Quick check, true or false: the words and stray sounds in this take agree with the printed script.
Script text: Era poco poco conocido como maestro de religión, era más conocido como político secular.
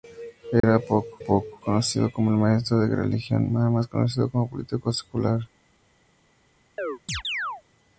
false